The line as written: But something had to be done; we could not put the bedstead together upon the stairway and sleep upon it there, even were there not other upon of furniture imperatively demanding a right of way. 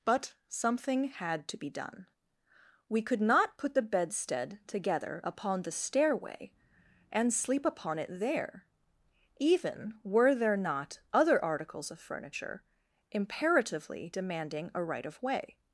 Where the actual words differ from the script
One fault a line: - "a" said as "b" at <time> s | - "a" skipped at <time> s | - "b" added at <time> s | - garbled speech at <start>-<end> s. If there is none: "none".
- "upon" said as "articles" at 11.4 s